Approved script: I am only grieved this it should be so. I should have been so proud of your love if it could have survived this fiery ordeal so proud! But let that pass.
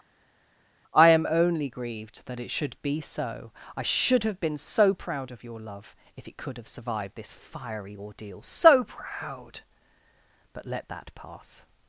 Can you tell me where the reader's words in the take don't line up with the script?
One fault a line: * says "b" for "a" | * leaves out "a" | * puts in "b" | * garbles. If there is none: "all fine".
* says "that" for "this"